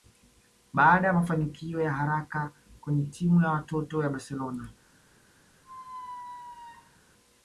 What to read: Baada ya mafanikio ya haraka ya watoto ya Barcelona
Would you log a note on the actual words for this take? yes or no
yes